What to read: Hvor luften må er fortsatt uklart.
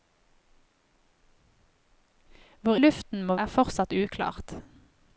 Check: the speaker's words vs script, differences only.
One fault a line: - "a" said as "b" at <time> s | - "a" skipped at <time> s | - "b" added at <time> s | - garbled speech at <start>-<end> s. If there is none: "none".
none